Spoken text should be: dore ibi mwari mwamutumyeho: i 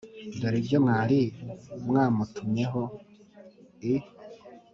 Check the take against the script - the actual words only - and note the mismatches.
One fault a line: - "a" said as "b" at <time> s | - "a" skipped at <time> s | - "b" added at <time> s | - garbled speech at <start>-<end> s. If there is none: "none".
- "ibi" said as "ibyo" at 0.6 s